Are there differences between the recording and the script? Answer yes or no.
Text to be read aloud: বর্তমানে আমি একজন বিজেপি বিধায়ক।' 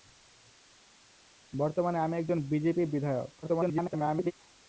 yes